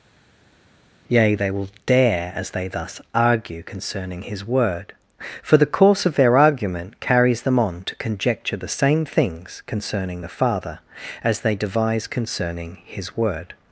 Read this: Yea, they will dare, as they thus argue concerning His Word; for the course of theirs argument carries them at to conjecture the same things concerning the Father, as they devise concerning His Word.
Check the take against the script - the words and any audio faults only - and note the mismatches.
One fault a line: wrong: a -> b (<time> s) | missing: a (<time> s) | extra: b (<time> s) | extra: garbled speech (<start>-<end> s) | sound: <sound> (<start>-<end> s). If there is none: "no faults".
wrong: theirs -> their (6.1 s)
wrong: at -> on (7.6 s)